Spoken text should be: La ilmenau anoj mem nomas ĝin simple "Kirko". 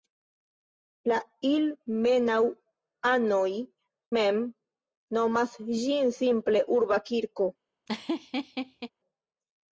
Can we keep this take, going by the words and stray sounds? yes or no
no